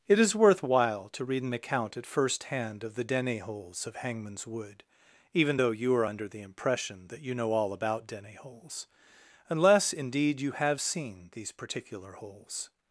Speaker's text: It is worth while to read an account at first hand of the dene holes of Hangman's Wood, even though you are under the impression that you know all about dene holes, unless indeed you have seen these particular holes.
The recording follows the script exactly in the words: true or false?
true